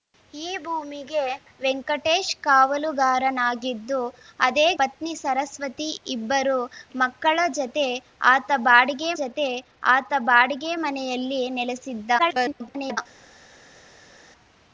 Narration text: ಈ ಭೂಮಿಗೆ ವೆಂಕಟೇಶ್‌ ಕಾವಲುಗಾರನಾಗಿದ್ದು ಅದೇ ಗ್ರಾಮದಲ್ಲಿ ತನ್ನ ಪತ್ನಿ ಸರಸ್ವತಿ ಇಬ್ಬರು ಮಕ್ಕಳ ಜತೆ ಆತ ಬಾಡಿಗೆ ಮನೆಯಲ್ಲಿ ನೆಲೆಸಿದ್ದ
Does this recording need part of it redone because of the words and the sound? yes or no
yes